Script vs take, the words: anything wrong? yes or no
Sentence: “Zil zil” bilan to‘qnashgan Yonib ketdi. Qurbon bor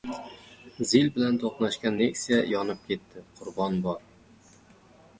yes